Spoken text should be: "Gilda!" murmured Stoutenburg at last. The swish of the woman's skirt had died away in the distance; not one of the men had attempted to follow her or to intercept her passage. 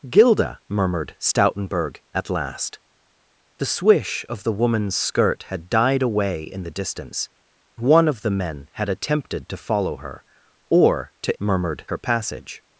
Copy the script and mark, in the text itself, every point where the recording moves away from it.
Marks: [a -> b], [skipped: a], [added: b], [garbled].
"Gilda!" murmured Stoutenburg at last. The swish of the woman's skirt had died away in the distance; [skipped: not] one of the men had attempted to follow her or to [intercept -> murmured] her passage.